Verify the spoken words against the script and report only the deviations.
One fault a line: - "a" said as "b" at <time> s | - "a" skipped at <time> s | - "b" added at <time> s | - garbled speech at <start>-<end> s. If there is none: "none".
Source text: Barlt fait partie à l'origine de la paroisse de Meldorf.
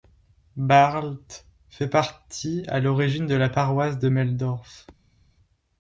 none